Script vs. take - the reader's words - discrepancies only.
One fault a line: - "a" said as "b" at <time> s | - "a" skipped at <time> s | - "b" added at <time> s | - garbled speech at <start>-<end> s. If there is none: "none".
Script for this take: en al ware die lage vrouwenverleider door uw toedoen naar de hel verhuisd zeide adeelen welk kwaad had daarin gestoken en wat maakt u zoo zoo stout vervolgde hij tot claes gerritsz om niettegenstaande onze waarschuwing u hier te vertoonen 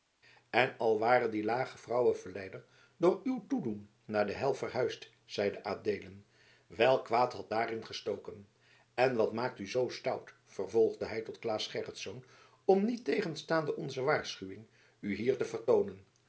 - "zoo" skipped at 9.9 s